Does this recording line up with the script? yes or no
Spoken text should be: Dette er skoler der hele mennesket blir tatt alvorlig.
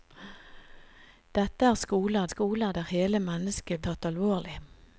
no